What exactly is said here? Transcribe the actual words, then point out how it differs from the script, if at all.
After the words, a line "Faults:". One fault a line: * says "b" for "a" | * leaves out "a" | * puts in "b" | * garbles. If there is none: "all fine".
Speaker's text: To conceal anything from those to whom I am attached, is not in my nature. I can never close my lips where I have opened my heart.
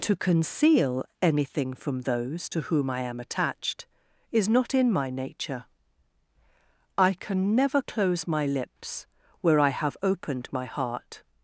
To conceal anything from those to whom I am attached, is not in my nature. I can never close my lips where I have opened my heart.
Faults:
all fine